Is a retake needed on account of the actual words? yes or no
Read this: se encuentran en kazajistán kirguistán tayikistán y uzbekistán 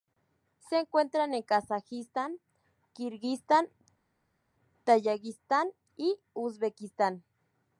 no